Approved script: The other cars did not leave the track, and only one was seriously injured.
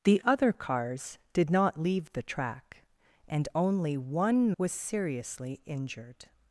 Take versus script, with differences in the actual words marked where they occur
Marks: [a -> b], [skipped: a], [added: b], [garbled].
The other cars did not leave the track, and only one was seriously injured.